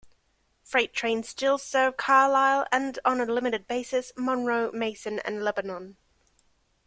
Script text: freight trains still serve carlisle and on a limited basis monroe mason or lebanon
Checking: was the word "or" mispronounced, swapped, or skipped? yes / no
yes